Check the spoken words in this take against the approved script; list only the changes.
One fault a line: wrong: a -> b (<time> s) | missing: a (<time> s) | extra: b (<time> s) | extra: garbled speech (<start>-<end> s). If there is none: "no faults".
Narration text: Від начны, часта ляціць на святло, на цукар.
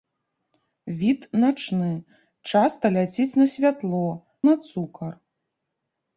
no faults